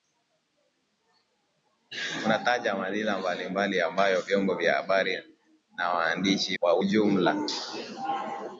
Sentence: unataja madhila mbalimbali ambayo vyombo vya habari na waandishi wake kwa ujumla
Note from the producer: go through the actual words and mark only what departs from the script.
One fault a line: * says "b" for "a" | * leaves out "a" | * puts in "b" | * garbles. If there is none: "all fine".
* leaves out "wake"